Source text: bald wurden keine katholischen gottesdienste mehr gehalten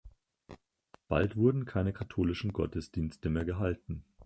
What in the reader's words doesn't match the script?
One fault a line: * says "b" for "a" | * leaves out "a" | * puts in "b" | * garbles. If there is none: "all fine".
all fine